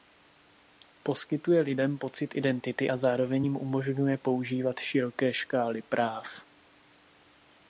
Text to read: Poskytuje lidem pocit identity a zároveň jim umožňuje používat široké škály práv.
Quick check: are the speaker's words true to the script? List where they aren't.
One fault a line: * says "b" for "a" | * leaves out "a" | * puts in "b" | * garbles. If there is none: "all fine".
all fine